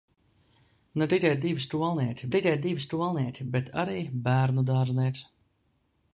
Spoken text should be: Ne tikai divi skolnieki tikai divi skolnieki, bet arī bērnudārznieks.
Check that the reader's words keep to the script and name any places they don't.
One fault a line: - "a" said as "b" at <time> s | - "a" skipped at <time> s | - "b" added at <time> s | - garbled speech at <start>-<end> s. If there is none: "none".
none